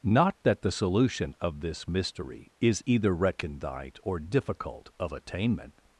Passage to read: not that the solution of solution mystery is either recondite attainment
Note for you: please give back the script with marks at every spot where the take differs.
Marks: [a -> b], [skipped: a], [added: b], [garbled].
not that the solution of [solution -> this] mystery is either recondite [added: or difficult of] attainment